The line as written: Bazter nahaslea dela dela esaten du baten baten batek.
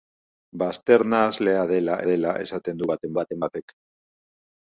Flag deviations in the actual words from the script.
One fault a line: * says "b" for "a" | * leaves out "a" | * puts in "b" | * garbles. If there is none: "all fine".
all fine